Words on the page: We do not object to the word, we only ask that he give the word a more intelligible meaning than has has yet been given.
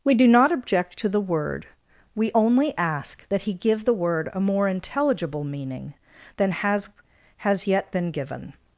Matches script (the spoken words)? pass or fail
pass